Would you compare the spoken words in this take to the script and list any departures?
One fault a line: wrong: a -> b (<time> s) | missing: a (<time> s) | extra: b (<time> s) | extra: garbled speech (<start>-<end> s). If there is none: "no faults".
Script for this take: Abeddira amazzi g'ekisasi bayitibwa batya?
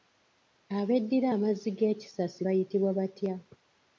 no faults